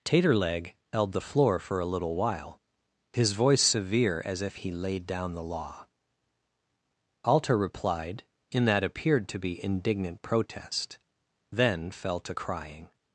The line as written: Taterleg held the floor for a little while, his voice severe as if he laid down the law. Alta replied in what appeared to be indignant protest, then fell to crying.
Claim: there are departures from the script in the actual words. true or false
true